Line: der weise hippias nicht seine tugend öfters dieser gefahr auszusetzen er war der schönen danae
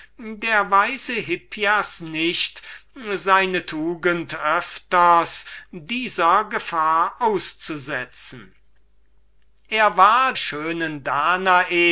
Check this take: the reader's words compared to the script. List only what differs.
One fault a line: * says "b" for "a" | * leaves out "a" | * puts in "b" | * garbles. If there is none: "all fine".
* leaves out "der"